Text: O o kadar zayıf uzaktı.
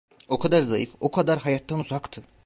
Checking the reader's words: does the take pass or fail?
fail